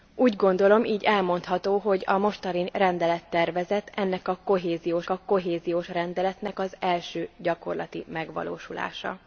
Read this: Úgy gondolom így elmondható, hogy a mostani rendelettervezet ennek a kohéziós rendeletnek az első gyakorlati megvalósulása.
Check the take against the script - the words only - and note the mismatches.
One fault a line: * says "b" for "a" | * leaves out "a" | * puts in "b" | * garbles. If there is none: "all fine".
* puts in "a kohéziós"